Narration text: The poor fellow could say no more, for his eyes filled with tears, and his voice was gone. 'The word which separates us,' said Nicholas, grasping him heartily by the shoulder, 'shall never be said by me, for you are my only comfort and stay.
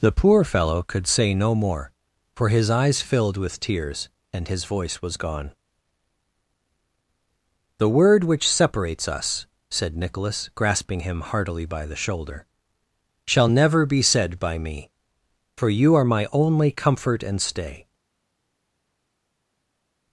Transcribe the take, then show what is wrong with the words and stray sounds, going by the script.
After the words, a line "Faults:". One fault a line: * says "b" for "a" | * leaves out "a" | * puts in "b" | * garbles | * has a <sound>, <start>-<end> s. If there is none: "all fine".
The poor fellow could say no more, for his eyes filled with tears, and his voice was gone. 'The word which separates us,' said Nicholas, grasping him heartily by the shoulder, 'shall never be said by me, for you are my only comfort and stay.
Faults:
all fine